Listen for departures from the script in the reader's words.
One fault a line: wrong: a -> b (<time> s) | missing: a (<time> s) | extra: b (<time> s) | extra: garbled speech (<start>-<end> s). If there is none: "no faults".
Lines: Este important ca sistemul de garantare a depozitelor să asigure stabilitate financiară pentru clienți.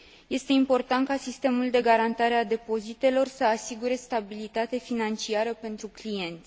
no faults